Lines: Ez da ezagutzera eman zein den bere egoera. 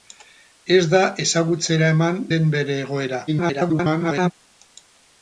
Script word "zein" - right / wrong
wrong